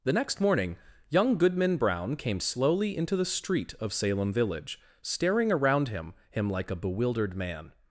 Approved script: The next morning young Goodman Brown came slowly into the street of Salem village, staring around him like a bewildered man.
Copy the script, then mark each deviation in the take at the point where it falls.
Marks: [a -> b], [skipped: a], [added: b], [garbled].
The next morning young Goodman Brown came slowly into the street of Salem village, staring around him [added: him] like a bewildered man.